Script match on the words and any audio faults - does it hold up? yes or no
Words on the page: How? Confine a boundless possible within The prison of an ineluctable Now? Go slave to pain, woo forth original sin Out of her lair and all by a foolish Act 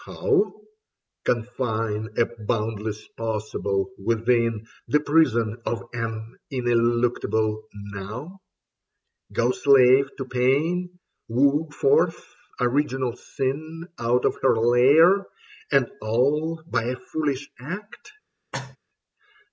no